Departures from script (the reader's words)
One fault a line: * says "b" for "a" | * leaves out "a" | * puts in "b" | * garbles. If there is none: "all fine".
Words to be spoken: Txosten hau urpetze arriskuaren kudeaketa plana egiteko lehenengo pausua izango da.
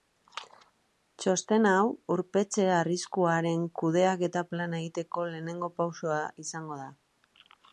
all fine